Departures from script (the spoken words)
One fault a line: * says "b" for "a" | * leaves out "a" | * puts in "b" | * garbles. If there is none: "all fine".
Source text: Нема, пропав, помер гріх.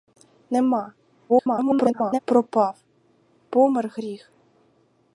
* garbles